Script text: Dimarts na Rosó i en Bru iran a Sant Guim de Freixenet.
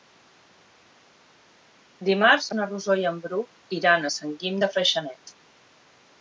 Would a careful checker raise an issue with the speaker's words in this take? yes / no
no